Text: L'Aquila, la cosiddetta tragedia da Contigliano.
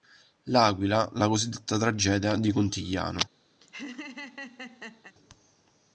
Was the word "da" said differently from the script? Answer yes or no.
yes